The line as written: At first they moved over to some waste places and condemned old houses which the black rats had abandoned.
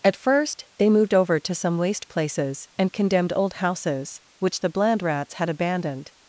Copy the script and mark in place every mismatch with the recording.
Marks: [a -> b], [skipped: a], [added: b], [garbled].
At first they moved over to some waste places and condemned old houses which the [black -> bland] rats had abandoned.